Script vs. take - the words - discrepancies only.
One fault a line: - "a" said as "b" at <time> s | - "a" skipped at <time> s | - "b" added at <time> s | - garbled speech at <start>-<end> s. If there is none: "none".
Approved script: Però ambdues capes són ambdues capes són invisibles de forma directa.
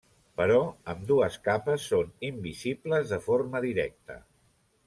- "ambdues capes són" skipped at 2.1 s